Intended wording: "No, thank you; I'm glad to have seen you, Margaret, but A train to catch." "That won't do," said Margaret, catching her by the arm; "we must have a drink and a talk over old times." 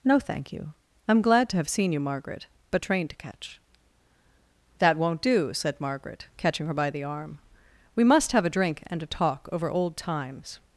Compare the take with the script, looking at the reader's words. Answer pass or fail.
pass